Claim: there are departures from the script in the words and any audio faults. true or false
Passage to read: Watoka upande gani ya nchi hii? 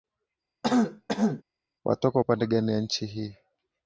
true